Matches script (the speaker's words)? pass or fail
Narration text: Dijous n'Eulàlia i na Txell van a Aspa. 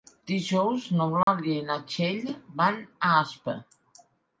pass